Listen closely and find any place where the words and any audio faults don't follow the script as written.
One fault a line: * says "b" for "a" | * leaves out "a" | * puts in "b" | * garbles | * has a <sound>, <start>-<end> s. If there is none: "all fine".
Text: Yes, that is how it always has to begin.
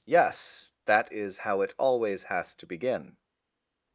all fine